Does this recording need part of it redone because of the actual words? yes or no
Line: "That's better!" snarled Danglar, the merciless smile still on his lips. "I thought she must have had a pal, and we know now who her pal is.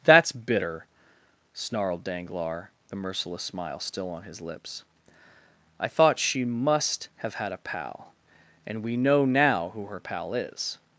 yes